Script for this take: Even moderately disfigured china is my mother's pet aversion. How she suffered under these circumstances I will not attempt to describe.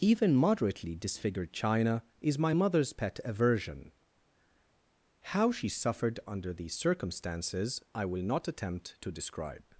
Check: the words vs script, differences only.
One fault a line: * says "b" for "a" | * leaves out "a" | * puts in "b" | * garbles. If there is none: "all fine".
all fine